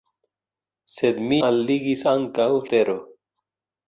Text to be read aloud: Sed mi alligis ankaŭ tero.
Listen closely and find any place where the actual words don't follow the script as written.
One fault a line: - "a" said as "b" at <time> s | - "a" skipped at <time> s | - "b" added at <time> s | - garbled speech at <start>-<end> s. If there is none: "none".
none